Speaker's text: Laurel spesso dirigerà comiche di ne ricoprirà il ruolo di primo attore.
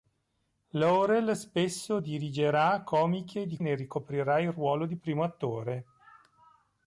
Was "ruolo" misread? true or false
false